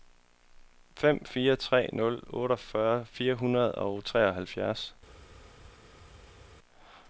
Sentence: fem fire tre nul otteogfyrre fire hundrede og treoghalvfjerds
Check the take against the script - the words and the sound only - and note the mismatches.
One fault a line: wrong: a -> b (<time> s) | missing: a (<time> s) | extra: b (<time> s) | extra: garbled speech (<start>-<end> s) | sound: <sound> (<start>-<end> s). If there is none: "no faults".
no faults